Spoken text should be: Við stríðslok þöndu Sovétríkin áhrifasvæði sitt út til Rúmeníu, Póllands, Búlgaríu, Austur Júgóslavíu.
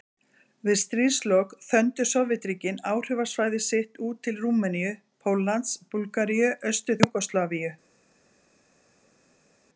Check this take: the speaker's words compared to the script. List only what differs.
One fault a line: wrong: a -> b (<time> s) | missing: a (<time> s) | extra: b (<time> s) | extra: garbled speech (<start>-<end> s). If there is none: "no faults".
no faults